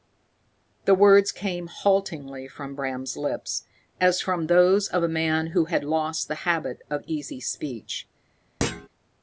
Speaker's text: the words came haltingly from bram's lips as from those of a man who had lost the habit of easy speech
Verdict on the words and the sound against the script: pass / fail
fail